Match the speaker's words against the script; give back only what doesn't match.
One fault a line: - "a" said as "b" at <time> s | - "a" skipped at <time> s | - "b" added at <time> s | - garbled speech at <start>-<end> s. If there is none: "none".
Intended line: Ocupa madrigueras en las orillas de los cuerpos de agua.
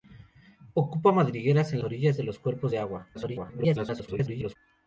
- "las" skipped at 1.8 s
- garbled speech at 3.1-4.6 s